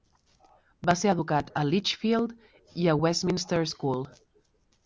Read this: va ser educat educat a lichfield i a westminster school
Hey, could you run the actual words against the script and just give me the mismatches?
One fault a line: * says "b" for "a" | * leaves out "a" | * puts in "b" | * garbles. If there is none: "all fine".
* leaves out "educat"